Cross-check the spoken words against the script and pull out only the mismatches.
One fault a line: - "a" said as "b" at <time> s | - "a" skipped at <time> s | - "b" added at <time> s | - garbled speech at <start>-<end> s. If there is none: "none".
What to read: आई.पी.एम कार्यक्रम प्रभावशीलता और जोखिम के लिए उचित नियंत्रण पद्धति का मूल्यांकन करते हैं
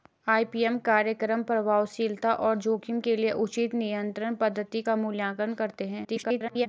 - garbled speech at 6.0-6.7 s